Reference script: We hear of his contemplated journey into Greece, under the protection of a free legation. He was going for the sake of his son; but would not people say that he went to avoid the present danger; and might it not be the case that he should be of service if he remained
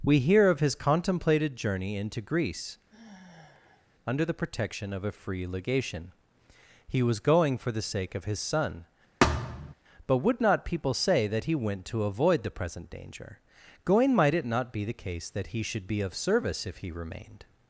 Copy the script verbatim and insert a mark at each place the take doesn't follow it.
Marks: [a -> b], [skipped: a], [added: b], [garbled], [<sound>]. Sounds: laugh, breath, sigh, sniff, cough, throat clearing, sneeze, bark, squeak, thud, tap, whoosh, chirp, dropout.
We hear of his contemplated journey into Greece, [sigh] under the protection of a free legation. He was going for the sake of his son; [thud] but would not people say that he went to avoid the present danger; [and -> going] might it not be the case that he should be of service if he remained